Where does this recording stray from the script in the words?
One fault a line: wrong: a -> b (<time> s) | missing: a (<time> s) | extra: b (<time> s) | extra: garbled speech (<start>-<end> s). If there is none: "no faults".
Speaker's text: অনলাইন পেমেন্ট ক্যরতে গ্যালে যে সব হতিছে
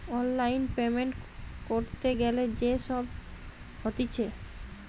no faults